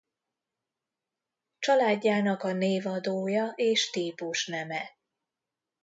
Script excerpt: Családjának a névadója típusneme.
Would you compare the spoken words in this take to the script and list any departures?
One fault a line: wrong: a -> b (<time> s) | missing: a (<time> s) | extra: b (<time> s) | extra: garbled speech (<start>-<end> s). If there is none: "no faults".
extra: és (3.5 s)